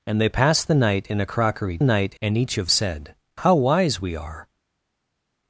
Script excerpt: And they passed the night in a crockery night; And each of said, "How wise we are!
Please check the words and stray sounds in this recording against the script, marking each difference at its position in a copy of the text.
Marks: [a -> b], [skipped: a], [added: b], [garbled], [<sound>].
And they passed the night in a crockery night; And each of said, "How wise we are!